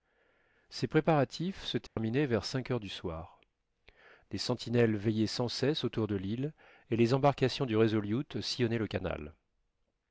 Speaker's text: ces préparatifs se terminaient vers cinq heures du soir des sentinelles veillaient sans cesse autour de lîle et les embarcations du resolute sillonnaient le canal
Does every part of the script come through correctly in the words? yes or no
yes